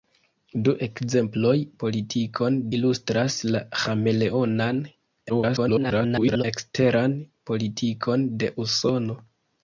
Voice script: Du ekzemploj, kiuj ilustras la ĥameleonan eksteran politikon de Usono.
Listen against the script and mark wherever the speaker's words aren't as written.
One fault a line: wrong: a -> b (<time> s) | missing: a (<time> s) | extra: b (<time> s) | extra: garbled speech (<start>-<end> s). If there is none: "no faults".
wrong: kiuj -> politikon (1.9 s)
extra: garbled speech (5.3-6.4 s)